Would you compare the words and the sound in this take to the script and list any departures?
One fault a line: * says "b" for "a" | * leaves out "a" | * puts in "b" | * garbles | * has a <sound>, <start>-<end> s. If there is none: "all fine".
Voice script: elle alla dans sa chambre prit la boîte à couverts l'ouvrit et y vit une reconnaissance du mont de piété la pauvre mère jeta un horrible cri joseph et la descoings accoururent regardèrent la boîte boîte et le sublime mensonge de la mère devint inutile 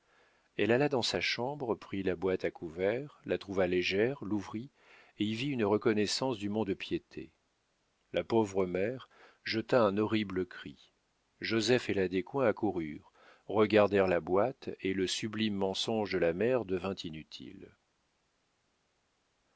* puts in "la trouva légère"
* leaves out "boîte"